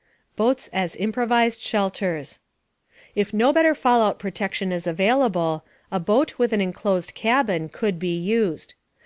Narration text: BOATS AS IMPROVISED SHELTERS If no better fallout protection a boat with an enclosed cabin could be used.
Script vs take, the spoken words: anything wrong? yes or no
yes